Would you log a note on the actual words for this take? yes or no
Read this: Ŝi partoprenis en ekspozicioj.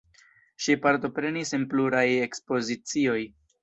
yes